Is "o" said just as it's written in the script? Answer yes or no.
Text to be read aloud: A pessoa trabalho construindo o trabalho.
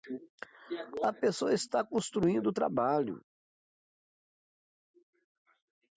yes